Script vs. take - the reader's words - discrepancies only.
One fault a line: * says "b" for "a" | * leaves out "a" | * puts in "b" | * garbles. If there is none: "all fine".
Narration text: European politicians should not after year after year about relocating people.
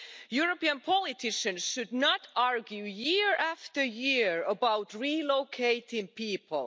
* says "argue" for "after"